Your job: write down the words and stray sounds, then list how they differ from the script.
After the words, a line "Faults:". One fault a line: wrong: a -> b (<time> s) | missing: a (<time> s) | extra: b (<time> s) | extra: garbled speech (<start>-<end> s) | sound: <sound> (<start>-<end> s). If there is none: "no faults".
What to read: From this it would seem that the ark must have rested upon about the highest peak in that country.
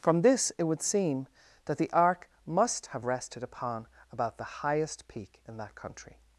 From this it would seem that the ark must have rested upon about the highest peak in that country.
Faults:
no faults